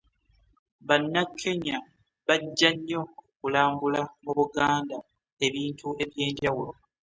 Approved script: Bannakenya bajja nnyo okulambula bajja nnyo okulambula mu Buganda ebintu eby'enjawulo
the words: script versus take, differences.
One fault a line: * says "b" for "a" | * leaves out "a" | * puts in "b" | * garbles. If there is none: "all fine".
* leaves out "bajja nnyo okulambula"